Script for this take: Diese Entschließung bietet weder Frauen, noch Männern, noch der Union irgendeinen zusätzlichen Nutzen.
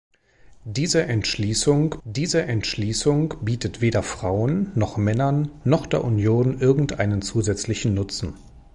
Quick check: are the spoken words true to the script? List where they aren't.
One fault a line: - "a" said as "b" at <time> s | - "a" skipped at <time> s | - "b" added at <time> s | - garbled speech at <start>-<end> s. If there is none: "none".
- "diese Entschließung" added at 2.0 s